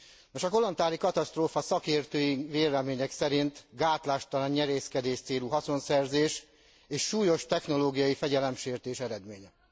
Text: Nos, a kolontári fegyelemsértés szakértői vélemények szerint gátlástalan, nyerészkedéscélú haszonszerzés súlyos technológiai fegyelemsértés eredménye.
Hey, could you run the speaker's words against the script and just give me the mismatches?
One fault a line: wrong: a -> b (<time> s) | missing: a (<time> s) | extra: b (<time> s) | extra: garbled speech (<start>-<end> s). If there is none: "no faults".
wrong: fegyelemsértés -> katasztrófa (1.0 s)
extra: és (6.9 s)